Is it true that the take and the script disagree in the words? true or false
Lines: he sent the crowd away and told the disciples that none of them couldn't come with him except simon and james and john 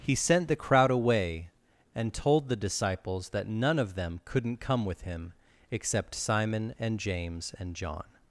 false